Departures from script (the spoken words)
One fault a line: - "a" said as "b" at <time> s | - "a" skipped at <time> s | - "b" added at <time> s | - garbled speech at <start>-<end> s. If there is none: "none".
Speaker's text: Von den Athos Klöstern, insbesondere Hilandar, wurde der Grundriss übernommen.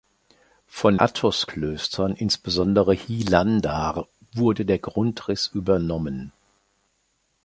- "den" skipped at 1.0 s